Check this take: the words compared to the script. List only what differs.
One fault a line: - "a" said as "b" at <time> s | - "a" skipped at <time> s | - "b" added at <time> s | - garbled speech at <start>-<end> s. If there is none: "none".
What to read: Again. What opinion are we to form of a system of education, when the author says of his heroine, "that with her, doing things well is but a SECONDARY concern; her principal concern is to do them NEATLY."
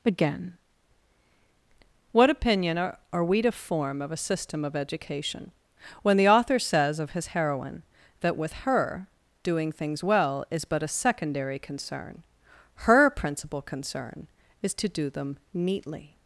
- "are" added at 3.1 s